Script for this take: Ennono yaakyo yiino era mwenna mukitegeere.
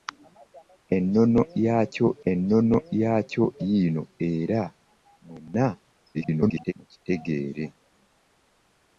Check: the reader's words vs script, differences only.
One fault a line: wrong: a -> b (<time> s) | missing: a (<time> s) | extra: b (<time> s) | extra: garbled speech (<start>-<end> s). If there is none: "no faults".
extra: ennono yaakyo (2.3 s)
extra: garbled speech (6.1-6.7 s)